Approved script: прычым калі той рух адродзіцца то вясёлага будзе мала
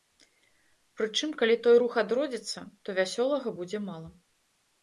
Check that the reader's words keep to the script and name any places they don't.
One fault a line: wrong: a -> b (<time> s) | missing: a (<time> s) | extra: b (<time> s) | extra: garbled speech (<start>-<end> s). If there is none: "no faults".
no faults